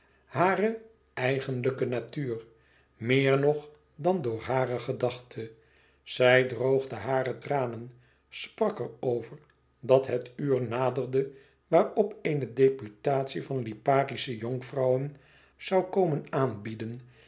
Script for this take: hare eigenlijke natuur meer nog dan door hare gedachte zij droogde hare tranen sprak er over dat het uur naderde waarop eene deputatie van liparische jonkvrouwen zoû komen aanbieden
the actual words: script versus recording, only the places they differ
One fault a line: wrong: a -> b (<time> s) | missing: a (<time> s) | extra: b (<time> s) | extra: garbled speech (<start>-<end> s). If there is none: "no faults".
no faults